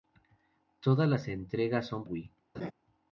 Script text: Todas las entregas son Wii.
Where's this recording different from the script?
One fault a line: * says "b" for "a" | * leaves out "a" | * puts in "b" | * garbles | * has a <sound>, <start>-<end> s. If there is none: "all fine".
* has a laugh, 2.5-2.7 s